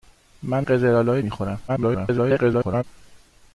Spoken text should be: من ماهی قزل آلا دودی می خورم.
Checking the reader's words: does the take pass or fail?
fail